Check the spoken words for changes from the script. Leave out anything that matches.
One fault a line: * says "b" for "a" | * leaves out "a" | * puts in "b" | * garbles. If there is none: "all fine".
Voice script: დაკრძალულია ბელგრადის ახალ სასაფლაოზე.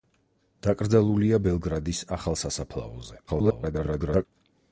* garbles